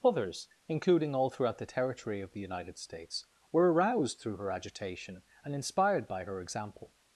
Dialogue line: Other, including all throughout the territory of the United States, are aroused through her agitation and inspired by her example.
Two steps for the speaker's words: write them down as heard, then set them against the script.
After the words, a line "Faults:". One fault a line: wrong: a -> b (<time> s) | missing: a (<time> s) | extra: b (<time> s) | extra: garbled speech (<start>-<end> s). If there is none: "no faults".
Others, including all throughout the territory of the United States, were aroused through her agitation and inspired by her example.
Faults:
wrong: Other -> Others (0.0 s)
wrong: are -> were (3.5 s)